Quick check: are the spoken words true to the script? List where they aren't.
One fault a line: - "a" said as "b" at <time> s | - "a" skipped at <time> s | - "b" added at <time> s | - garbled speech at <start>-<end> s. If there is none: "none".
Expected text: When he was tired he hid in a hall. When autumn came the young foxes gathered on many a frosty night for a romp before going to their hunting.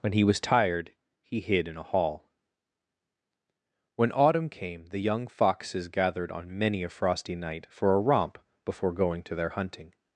none